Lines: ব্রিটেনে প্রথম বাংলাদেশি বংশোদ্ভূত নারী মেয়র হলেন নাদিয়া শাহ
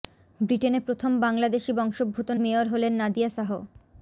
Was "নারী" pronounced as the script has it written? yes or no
no